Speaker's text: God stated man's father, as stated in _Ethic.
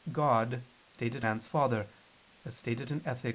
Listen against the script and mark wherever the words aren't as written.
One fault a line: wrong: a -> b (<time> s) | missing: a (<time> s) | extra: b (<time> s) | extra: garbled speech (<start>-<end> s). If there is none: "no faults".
no faults